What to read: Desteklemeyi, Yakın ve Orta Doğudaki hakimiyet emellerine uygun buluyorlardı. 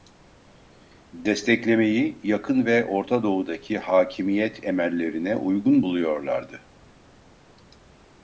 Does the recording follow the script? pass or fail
pass